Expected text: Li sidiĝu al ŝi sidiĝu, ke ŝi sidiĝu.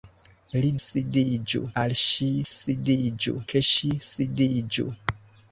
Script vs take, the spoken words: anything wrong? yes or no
no